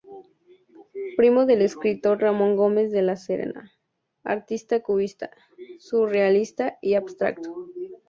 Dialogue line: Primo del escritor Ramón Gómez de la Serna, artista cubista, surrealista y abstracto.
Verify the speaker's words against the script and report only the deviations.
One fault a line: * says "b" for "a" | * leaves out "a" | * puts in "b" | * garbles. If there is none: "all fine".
all fine